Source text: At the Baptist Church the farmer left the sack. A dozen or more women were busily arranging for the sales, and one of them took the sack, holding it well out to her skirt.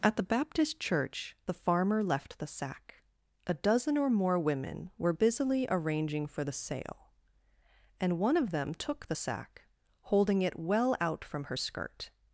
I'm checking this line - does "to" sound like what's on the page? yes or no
no